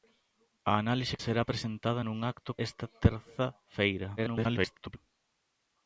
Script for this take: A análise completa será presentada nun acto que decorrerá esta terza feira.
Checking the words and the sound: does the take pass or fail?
fail